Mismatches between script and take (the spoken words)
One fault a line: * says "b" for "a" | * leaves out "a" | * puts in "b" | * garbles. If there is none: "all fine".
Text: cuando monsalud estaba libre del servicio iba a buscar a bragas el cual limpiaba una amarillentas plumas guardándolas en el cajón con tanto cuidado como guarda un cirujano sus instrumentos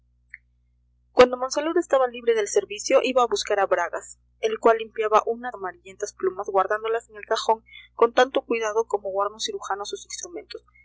all fine